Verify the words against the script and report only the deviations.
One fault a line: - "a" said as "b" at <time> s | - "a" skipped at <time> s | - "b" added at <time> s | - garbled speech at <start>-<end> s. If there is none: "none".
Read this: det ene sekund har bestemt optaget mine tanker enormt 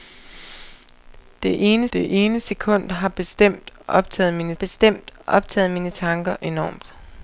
- "det ene" added at 1.9 s
- "bestemt optaget mine" added at 4.5 s